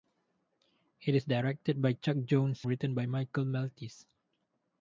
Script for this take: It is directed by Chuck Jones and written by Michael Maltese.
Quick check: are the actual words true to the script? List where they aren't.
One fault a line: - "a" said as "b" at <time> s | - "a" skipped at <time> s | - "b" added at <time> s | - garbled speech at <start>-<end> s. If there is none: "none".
- "and" skipped at 2.6 s